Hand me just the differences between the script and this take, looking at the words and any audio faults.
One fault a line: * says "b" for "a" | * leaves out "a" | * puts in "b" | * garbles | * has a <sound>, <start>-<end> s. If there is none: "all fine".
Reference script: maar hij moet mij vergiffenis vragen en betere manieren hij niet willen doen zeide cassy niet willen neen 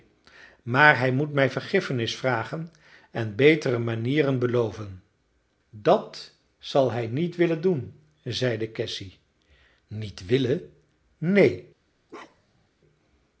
* puts in "beloven dat zal"
* has a bark, 12.1-12.7 s